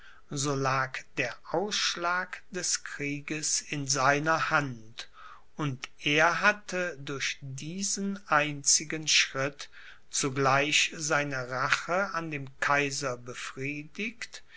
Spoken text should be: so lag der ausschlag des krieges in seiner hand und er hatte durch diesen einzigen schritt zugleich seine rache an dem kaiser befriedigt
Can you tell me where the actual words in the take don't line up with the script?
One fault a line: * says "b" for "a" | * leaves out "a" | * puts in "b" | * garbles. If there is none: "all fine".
all fine